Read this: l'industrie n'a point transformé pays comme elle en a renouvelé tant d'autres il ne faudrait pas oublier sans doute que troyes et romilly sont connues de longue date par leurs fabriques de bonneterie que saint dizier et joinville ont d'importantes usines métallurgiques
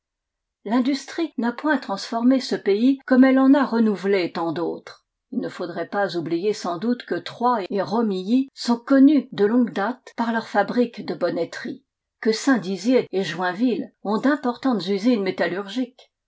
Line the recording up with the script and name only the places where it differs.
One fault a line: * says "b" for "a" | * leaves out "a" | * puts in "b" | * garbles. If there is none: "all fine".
* puts in "ce"